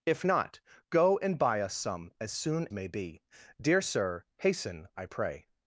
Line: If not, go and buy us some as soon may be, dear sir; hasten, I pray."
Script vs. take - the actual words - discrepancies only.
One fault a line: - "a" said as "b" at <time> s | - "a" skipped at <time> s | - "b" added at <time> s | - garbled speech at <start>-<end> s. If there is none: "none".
none